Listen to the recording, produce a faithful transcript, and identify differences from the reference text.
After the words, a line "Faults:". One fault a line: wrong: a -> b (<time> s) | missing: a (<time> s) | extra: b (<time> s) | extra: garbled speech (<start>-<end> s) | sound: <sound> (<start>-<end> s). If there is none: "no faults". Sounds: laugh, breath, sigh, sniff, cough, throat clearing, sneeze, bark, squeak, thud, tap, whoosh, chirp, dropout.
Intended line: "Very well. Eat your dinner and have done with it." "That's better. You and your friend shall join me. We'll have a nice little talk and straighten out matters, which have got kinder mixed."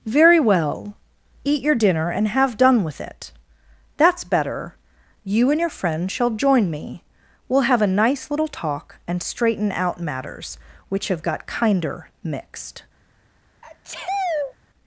"Very well. Eat your dinner and have done with it." "That's better. You and your friend shall join me. We'll have a nice little talk and straighten out matters, which have got kinder mixed."
Faults:
sound: sneeze (13.6-14.5 s)